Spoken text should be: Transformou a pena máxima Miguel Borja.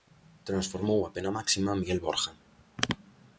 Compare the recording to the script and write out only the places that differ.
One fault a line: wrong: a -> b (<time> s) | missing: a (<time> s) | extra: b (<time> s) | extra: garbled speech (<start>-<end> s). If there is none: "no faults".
no faults